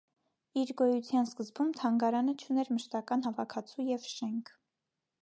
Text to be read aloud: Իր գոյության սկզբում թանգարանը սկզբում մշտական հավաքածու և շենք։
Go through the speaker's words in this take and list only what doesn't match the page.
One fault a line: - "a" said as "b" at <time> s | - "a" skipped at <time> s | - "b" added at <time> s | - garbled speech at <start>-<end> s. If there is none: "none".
- "սկզբում" said as "չուներ" at 2.5 s